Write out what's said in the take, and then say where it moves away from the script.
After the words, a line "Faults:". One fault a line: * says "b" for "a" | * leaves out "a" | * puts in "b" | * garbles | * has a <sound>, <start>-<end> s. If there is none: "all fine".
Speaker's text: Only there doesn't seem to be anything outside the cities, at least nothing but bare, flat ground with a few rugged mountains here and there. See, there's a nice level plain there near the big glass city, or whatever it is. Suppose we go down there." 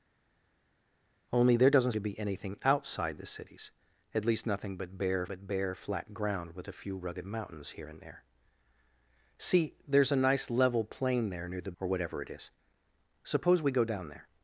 Only there doesn't to be anything outside the cities, at least nothing but bare but bare, flat ground with a few rugged mountains here and there. See, there's a nice level plain there near the or whatever it is. Suppose we go down there."
Faults:
* leaves out "seem"
* puts in "but bare"
* leaves out "big glass city"